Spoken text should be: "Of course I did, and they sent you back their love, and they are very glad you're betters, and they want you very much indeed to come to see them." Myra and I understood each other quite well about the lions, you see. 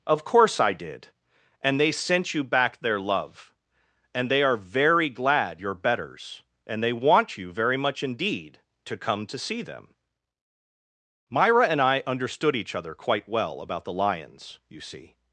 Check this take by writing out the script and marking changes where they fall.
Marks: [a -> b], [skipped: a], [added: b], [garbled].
"Of course I did, and they sent you back their love, and they are very glad you're betters, and they want you very much indeed to come to see them." Myra and I understood each other quite well about the lions, you see.